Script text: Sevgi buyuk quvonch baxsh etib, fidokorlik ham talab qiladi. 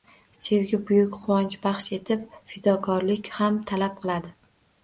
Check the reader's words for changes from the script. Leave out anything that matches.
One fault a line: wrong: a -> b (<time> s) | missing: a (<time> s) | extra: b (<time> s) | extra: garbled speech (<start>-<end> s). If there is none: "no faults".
no faults